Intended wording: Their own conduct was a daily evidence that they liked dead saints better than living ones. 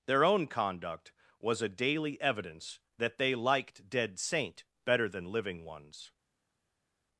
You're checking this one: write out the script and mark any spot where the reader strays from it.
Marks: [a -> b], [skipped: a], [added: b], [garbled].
Their own conduct was a daily evidence that they liked dead [saints -> saint] better than living ones.